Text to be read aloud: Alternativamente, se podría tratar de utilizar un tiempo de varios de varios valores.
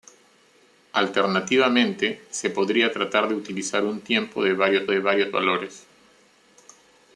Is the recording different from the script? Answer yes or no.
no